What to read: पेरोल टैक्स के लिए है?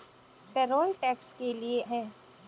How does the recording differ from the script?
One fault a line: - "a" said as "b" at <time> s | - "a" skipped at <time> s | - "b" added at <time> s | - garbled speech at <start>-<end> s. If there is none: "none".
none